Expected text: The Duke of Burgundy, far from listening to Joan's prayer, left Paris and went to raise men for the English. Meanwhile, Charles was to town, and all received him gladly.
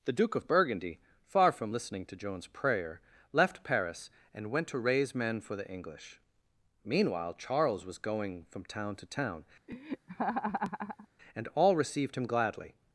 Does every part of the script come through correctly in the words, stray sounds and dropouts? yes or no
no